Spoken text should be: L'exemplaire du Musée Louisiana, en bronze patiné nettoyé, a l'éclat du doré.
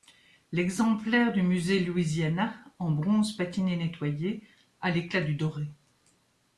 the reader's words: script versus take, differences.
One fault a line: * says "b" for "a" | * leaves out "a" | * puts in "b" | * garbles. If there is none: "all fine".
all fine